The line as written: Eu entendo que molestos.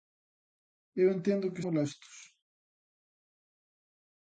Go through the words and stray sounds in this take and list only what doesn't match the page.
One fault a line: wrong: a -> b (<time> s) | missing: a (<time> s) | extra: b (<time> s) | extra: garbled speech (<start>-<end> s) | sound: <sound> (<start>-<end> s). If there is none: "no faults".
no faults